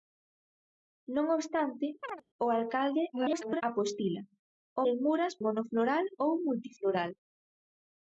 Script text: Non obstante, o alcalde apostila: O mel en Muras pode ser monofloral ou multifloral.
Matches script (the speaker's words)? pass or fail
fail